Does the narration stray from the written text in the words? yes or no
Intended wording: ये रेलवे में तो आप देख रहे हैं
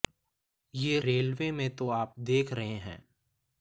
no